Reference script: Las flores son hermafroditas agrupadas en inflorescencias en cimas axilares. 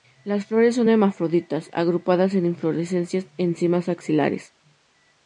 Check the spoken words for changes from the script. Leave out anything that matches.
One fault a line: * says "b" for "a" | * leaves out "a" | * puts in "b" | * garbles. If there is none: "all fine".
all fine